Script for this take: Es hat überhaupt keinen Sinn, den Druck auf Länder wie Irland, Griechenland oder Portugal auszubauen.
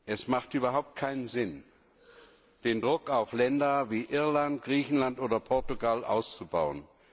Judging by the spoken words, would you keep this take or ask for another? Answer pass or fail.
pass